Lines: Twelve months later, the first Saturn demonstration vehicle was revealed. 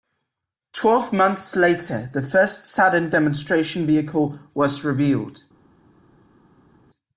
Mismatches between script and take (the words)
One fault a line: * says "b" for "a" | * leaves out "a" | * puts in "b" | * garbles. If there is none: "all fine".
all fine